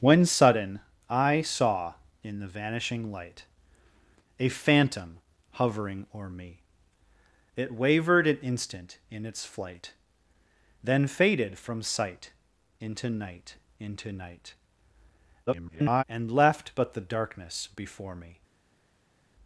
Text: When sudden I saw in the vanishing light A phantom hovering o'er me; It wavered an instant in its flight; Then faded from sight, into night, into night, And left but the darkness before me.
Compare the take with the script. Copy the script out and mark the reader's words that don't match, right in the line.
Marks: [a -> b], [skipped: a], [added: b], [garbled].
When sudden I saw in the vanishing light A phantom hovering o'er me; It wavered an instant in its flight; Then faded from sight, into night, into night, [garbled] And left but the darkness before me.